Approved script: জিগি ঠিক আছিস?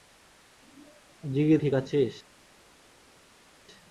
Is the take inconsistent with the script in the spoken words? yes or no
no